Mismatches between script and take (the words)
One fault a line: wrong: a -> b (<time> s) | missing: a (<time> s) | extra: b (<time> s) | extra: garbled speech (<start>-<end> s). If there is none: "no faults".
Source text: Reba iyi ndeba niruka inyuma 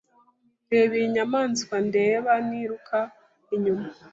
extra: nyamaswa (1.1 s)